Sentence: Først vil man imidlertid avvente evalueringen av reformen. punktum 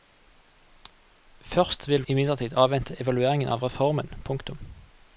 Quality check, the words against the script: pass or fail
fail